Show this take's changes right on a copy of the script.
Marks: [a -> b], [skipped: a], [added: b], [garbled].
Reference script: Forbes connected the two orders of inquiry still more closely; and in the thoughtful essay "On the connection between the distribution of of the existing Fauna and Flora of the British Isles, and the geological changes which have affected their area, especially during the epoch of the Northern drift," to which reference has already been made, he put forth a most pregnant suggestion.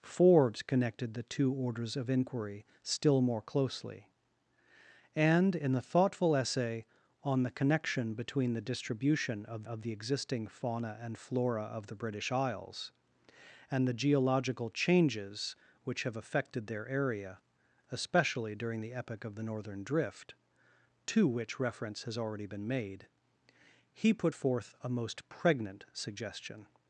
Forbes connected the two orders of inquiry still more closely; and in the thoughtful essay "On the connection between the distribution of of the existing Fauna and Flora of the British Isles, and the geological changes which have affected their area, especially during the epoch of the Northern drift," to which reference has already been made, he put forth a most pregnant suggestion.